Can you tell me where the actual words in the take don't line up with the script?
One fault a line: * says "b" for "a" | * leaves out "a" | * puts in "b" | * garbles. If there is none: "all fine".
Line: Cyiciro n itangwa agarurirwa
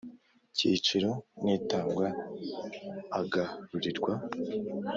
all fine